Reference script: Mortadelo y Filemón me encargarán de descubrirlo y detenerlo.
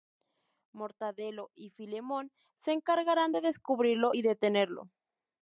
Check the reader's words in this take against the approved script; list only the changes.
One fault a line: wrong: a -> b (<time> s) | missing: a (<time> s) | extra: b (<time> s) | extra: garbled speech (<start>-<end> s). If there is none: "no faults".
wrong: me -> se (2.6 s)